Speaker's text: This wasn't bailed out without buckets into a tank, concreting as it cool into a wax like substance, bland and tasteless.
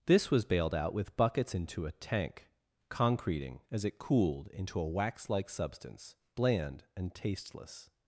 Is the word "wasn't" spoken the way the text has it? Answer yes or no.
no